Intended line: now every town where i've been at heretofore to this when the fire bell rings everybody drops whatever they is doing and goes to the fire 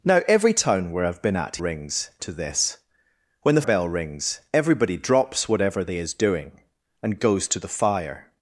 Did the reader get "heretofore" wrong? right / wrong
wrong